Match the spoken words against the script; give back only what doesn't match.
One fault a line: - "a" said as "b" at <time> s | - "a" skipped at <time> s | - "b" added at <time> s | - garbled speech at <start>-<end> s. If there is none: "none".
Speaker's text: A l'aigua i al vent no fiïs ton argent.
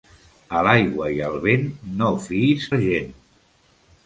- "ton" skipped at 2.7 s